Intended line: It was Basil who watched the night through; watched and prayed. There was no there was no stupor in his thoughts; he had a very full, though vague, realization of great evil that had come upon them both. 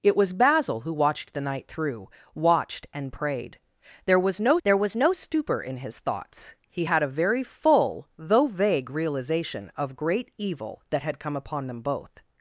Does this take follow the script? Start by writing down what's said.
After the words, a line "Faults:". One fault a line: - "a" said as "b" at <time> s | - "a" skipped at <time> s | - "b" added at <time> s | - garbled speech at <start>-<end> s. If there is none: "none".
It was Basil who watched the night through; watched and prayed. There was no there was no stupor in his thoughts; he had a very full, though vague, realization of great evil that had come upon them both.
Faults:
none